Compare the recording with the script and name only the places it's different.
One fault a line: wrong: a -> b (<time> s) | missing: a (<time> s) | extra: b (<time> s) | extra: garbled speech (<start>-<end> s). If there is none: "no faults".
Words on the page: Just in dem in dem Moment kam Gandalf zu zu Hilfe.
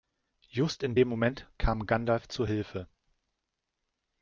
missing: in dem (1.1 s)
missing: zu (2.5 s)